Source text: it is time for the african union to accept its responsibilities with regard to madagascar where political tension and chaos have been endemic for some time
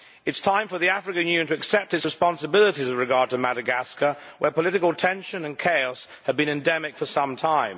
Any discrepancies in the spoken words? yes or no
no